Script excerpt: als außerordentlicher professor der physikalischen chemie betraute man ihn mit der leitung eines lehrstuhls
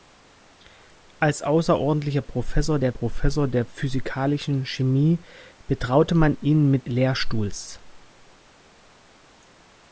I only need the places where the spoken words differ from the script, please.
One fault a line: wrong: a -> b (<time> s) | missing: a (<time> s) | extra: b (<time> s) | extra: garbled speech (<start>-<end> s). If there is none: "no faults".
extra: professor der (2.9 s)
missing: der leitung eines (6.9 s)